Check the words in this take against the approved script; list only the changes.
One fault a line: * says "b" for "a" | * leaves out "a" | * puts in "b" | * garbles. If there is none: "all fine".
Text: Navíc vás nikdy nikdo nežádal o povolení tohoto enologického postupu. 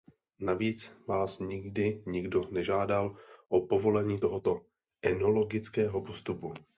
all fine